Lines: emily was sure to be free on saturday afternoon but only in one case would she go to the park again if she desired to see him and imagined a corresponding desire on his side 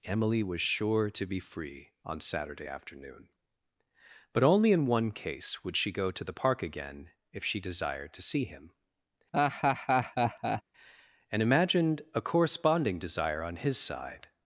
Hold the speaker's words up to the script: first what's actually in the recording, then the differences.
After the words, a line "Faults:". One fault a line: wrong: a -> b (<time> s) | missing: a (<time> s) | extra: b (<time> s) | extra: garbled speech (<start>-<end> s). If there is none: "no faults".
emily was sure to be free on saturday afternoon but only in one case would she go to the park again if she desired to see him and imagined a corresponding desire on his side
Faults:
no faults